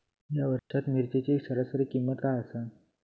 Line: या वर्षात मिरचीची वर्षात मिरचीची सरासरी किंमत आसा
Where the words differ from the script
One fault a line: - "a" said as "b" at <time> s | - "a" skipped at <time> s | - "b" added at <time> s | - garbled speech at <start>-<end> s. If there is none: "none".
- "वर्षात मिरचीची" skipped at 1.4 s
- "काय" added at 2.2 s